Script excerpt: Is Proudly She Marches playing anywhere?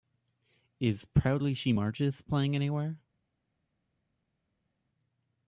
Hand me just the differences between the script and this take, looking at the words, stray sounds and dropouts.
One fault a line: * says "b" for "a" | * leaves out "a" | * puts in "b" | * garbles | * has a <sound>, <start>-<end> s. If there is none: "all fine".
all fine